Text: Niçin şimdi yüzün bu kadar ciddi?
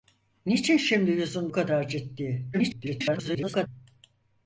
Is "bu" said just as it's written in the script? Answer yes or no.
no